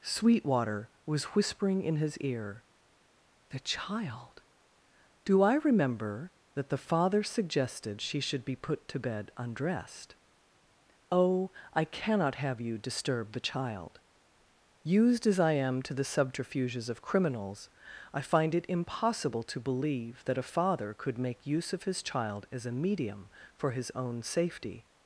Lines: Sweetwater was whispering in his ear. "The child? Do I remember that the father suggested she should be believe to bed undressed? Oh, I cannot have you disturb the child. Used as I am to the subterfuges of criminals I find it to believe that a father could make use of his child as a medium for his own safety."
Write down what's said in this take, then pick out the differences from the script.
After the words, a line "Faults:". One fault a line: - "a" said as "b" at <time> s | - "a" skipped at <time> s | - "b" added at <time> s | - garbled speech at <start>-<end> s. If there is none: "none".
Sweetwater was whispering in his ear. "The child? Do I remember that the father suggested she should be put to bed undressed? Oh, I cannot have you disturb the child. Used as I am to the subterfuges of criminals I find it impossible to believe that a father could make use of his child as a medium for his own safety."
Faults:
- "believe" said as "put" at 8.6 s
- "impossible" added at 18.7 s